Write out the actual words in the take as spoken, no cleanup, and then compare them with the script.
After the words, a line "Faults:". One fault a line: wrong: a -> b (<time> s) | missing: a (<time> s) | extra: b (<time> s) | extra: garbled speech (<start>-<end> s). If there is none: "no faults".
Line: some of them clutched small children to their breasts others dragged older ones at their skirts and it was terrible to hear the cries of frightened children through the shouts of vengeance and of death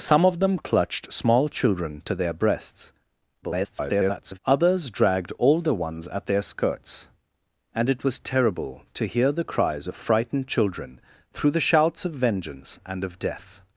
some of them clutched small children to their breasts [garbled] others dragged older ones at their skirts and it was terrible to hear the cries of frightened children through the shouts of vengeance and of death
Faults:
extra: garbled speech (3.4-4.4 s)